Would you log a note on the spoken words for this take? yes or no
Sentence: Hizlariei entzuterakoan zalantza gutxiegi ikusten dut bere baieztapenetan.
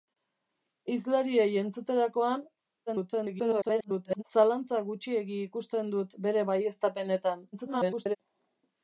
yes